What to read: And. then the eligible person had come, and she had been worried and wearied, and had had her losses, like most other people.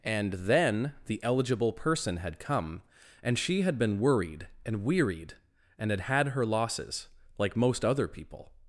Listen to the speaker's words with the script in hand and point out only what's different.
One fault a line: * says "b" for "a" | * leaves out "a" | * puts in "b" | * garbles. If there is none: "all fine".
all fine